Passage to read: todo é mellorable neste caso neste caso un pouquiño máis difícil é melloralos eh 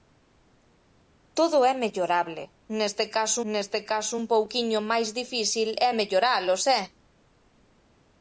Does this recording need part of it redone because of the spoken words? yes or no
no